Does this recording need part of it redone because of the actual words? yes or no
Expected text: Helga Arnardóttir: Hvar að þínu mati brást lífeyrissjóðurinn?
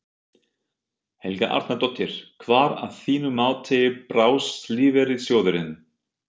no